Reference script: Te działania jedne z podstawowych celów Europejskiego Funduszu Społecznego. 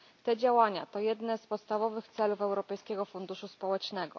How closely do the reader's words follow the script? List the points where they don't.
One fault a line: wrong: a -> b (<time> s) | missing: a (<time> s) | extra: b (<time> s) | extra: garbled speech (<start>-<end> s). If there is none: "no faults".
extra: to (0.8 s)